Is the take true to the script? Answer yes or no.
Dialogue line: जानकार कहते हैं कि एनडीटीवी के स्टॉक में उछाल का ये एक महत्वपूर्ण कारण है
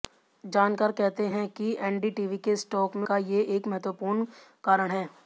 no